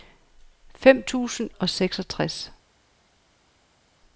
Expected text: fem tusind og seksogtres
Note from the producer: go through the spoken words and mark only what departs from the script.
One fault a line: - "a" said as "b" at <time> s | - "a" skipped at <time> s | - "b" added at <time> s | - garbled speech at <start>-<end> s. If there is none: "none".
none